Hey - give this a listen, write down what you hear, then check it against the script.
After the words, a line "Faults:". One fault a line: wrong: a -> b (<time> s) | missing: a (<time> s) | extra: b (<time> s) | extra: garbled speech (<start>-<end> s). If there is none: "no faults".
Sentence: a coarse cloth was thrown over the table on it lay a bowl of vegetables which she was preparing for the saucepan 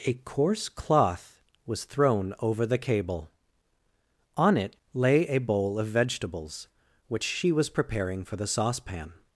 a coarse cloth was thrown over the cable on it lay a bowl of vegetables which she was preparing for the saucepan
Faults:
wrong: table -> cable (2.8 s)